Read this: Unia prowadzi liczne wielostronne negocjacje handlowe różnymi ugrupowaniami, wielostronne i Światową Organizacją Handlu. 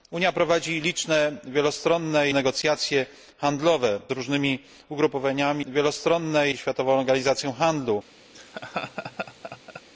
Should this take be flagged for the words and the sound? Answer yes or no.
yes